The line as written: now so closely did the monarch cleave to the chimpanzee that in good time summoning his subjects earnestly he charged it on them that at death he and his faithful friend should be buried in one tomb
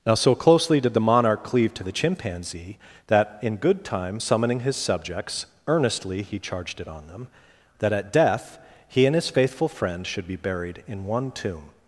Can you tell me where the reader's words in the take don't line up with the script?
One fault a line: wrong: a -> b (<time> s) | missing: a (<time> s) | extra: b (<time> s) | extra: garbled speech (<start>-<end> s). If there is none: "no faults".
no faults